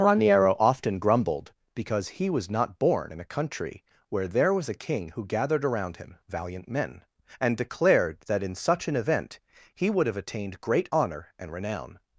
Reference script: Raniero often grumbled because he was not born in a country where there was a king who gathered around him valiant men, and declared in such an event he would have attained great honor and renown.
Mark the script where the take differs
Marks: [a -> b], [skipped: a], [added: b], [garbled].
Raniero often grumbled because he was not born in a country where there was a king who gathered around him valiant men, and declared [added: that] in such an event he would have attained great honor and renown.